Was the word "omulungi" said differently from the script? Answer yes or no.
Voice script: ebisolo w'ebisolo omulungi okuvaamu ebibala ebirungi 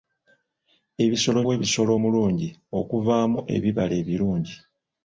no